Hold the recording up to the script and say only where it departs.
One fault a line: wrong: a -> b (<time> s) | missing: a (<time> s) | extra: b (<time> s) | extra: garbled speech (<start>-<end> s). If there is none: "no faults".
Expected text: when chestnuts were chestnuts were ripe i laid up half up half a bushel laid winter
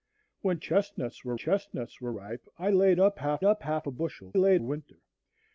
no faults